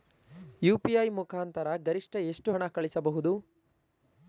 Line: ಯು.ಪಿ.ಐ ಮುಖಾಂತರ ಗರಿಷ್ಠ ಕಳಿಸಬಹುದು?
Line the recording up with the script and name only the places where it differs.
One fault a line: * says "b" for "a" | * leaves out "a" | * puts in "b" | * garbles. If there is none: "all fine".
* puts in "ಎಷ್ಟು ಹಣ"